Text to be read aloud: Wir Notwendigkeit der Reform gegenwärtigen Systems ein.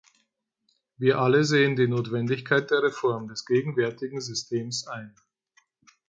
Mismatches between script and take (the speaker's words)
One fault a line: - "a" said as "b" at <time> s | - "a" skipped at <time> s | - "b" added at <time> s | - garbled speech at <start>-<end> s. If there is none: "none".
- "alle sehen die" added at 1.2 s
- "des" added at 3.2 s